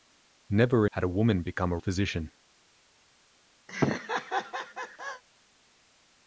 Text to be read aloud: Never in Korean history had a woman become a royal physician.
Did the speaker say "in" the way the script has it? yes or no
no